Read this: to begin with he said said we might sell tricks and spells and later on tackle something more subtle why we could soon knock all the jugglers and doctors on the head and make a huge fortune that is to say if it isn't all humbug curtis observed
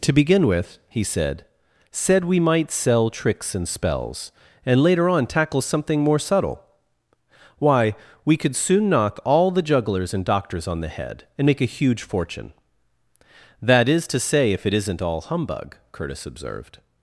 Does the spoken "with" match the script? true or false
true